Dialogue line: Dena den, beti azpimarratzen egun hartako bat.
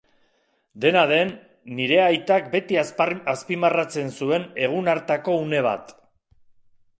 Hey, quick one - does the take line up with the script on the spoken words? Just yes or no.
no